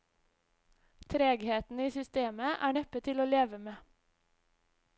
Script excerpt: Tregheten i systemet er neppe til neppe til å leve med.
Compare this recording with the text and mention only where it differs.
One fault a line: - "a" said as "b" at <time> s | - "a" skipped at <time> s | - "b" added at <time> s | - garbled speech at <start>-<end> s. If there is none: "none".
- "neppe til" skipped at 3.2 s